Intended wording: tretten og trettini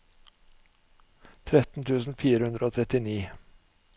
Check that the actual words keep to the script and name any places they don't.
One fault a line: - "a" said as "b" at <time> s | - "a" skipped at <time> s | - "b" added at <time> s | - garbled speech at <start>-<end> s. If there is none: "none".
- "tusen fire hundre" added at 1.9 s